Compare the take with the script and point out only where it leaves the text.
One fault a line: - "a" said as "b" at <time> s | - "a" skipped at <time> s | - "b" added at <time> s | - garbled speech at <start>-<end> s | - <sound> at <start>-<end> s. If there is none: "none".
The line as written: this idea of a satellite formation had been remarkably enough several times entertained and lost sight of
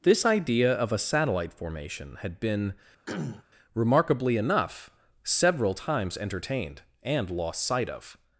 - throat clearing at 3.1-3.4 s